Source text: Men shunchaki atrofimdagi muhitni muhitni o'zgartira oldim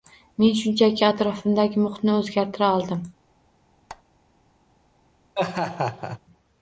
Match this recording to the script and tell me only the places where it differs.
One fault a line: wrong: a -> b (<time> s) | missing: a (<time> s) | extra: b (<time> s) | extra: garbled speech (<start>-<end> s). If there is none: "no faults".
missing: muhitni (2.2 s)